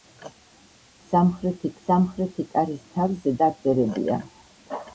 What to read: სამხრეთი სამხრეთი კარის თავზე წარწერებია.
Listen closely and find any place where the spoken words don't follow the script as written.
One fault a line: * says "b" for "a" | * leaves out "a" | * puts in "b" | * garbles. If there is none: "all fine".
all fine